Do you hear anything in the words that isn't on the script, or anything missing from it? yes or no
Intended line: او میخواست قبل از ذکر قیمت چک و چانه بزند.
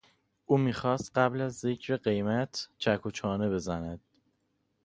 no